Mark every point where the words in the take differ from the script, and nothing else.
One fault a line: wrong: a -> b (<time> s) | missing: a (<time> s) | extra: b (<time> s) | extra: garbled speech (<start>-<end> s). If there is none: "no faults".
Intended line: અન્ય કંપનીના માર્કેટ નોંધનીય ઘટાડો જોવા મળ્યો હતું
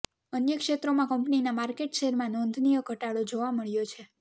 extra: ક્ષેત્રોમાં (0.6 s)
extra: શેરમાં (2.0 s)
wrong: હતું -> છે (3.9 s)